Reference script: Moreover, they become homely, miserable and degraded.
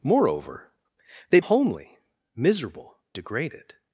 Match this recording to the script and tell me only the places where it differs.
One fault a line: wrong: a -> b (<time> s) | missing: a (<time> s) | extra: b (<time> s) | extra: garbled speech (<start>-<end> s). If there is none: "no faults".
missing: become (1.4 s)
missing: and (3.0 s)